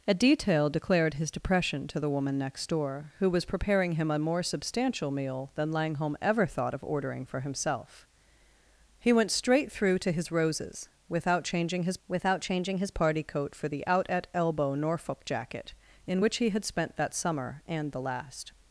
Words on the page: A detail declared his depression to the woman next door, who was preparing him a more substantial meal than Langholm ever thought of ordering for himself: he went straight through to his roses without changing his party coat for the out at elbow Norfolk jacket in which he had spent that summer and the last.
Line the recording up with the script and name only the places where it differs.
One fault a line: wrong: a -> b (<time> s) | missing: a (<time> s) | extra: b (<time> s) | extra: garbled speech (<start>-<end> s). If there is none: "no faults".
extra: without changing his (12.1 s)